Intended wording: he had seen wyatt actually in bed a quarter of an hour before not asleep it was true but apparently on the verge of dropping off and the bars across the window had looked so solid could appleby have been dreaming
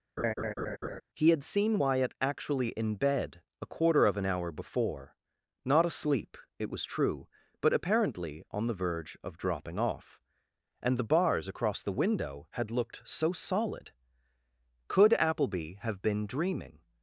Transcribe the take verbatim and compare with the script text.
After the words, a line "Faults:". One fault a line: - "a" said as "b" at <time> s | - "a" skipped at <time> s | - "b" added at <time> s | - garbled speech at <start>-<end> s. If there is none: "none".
he had seen wyatt actually in bed a quarter of an hour before not asleep it was true but apparently on the verge of dropping off and the bars across the window had looked so solid could appleby have been dreaming
Faults:
none